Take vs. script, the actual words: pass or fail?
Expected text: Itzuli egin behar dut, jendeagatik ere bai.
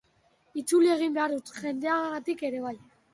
pass